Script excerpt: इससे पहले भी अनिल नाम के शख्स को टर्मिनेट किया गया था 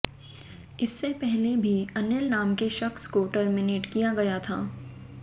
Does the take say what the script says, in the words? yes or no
yes